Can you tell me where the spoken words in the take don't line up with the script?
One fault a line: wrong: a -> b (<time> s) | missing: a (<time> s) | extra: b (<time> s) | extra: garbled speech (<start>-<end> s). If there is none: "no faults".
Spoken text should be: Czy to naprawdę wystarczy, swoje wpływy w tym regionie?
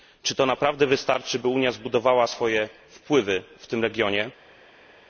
extra: by Unia zbudowała (1.4 s)